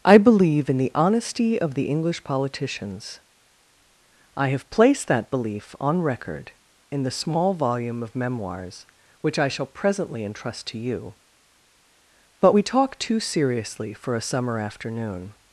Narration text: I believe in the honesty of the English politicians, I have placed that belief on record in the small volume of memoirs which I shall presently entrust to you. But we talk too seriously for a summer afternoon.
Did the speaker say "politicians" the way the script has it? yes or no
yes